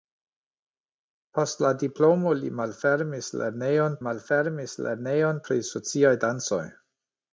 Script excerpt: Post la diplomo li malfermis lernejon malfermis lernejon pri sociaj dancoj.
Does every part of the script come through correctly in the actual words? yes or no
yes